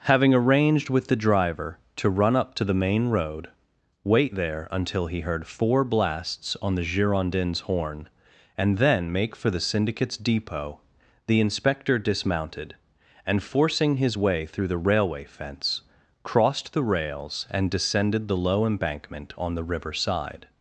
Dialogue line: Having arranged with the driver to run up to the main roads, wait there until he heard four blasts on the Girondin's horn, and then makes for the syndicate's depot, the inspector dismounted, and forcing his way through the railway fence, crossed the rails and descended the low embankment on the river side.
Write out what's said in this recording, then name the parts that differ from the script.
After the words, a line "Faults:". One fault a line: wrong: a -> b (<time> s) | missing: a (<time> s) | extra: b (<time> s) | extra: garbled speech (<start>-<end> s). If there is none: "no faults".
Having arranged with the driver to run up to the main road, wait there until he heard four blasts on the Girondin's horn, and then make for the syndicate's depot, the inspector dismounted, and forcing his way through the railway fence, crossed the rails and descended the low embankment on the river side.
Faults:
wrong: roads -> road (3.1 s)
wrong: makes -> make (9.1 s)